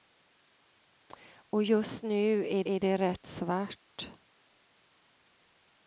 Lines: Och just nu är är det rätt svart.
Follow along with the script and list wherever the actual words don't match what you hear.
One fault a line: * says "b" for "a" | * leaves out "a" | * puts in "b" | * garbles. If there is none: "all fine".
all fine